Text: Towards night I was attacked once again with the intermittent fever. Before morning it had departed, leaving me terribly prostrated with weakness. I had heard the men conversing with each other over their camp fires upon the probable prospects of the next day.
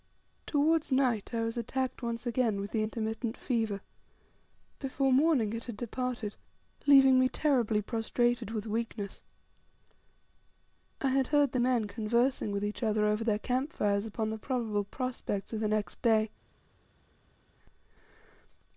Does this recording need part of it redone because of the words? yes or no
no